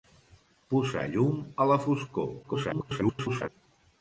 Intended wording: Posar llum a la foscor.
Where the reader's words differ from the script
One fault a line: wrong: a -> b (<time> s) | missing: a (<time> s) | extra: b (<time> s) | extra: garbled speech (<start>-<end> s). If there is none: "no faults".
extra: garbled speech (2.4-3.5 s)